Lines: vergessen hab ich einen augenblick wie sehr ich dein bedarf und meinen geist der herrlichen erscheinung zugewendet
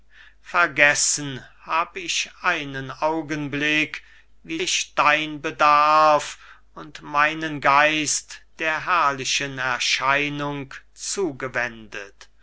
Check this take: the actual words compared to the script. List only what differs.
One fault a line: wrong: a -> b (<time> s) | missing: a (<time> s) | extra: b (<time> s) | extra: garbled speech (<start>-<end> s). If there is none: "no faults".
missing: sehr (4.6 s)